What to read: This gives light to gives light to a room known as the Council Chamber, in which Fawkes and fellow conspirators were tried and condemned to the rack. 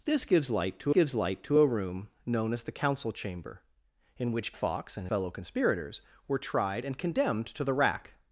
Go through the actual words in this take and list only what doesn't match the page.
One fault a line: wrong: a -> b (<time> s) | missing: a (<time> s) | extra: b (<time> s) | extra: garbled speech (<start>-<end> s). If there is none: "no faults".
no faults